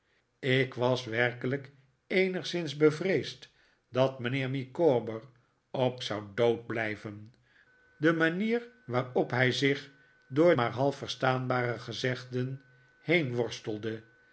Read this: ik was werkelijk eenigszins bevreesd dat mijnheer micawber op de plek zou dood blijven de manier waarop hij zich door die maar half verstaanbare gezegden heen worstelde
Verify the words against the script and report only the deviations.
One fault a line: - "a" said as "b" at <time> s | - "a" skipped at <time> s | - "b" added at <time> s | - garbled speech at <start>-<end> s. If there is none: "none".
- "de plek" skipped at 6.0 s
- "die" skipped at 10.6 s